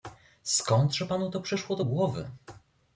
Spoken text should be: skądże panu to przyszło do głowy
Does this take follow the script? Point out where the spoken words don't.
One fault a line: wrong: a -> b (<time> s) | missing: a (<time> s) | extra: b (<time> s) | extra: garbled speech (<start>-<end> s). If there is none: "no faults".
no faults